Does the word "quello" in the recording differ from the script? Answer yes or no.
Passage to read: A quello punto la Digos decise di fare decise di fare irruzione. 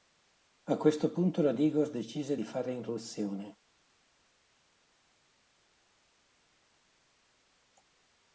yes